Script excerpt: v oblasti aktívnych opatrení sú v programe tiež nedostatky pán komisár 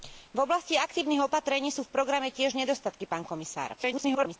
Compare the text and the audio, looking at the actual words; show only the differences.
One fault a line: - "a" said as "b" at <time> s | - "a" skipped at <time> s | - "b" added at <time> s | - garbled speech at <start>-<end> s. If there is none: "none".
- garbled speech at 3.8-4.4 s